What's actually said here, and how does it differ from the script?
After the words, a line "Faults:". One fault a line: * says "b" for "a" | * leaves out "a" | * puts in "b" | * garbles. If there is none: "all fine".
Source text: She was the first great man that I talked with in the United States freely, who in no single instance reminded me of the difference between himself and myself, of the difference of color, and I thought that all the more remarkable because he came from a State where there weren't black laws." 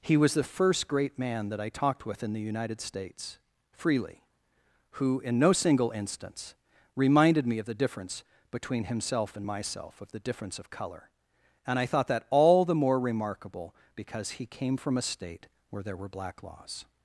He was the first great man that I talked with in the United States freely, who in no single instance reminded me of the difference between himself and myself, of the difference of color, and I thought that all the more remarkable because he came from a State where there were black laws."
Faults:
* says "He" for "She"
* says "were" for "weren't"